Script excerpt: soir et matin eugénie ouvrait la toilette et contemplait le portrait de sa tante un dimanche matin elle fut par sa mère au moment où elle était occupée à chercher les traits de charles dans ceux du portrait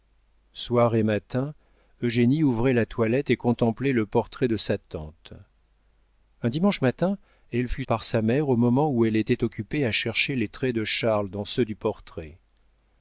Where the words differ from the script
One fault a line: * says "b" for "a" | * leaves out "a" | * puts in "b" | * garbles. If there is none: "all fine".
all fine